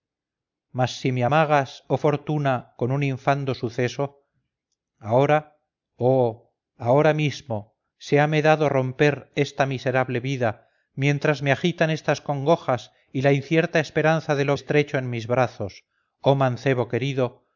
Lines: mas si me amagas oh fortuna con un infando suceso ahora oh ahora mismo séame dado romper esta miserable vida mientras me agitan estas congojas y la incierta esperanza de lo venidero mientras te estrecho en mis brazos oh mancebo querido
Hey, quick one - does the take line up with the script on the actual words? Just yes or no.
no